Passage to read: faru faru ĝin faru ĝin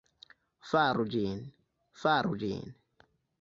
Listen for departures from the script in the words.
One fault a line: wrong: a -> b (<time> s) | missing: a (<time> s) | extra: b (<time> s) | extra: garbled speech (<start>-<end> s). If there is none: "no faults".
missing: faru (1.1 s)